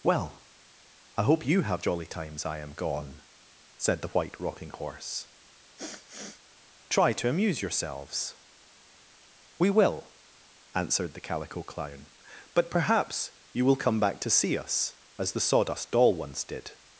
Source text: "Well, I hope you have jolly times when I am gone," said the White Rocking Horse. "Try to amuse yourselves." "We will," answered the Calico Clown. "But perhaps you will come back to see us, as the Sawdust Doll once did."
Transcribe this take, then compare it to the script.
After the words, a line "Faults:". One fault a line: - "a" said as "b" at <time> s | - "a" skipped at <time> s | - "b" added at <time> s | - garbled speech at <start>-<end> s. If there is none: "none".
"Well, I hope you have jolly times I am gone," said the White Rocking Horse. "Try to amuse yourselves." "We will," answered the Calico Clown. "But perhaps you will come back to see us, as the Sawdust Doll once did."
Faults:
- "when" skipped at 2.4 s